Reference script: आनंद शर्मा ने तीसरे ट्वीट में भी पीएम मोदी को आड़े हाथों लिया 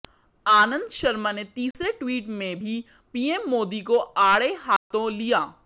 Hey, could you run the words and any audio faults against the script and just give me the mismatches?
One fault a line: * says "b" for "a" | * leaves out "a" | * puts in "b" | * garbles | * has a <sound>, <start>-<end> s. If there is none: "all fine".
* has a dropout, 1.7-1.7 s
* has a dropout, 4.8-4.9 s